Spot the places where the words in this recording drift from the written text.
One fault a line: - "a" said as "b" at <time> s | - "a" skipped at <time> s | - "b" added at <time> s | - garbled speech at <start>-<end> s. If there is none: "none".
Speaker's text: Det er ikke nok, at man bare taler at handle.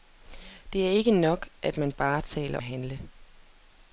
none